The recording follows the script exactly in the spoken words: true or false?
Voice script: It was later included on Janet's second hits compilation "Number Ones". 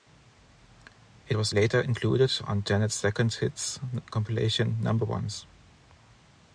true